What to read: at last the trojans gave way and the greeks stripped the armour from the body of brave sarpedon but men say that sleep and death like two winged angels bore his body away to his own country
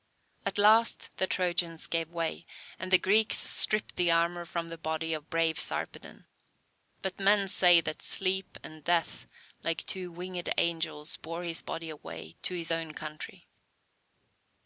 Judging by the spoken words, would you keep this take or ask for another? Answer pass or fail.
pass